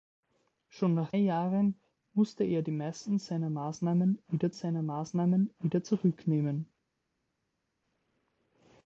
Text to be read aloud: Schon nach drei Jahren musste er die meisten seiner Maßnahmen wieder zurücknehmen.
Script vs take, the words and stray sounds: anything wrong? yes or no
yes